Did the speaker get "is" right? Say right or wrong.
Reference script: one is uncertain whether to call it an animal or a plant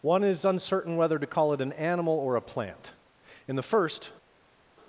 right